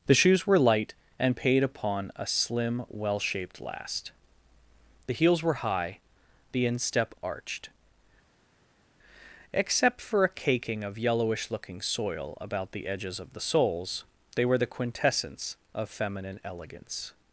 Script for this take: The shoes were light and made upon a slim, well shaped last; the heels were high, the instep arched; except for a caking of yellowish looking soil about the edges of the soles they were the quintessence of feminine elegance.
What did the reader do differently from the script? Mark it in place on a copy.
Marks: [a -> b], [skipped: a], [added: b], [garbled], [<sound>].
The shoes were light and [made -> paid] upon a slim, well shaped last; the heels were high, the instep arched; except for a caking of yellowish looking soil about the edges of the soles they were the quintessence of feminine elegance.